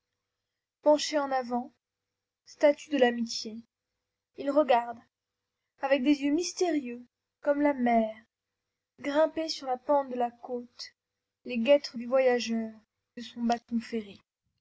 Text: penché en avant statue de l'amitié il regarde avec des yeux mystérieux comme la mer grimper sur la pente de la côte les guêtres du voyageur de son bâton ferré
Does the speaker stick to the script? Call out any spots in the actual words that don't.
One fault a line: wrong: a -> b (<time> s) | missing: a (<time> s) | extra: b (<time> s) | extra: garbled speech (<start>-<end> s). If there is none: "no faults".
no faults